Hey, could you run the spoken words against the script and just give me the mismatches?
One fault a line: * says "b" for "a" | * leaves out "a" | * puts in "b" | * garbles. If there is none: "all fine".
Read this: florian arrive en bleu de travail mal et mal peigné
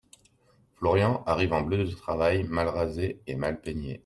* puts in "rasé"